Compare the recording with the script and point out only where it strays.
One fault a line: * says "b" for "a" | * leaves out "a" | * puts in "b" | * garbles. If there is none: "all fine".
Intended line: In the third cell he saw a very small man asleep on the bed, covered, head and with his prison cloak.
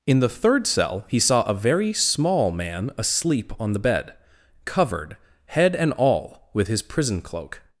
* puts in "all"